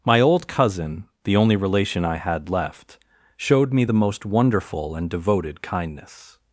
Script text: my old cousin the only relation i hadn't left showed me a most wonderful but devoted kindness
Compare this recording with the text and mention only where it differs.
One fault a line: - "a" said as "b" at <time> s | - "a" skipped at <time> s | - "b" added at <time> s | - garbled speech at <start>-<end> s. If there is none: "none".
- "hadn't" said as "had" at 2.1 s
- "a" said as "the" at 3.8 s
- "but" said as "and" at 4.9 s